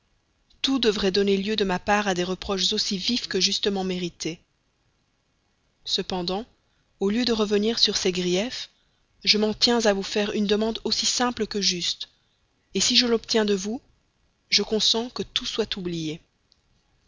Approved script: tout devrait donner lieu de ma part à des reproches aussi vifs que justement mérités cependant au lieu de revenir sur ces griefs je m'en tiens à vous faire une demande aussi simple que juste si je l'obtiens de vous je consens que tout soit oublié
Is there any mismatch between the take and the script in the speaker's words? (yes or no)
no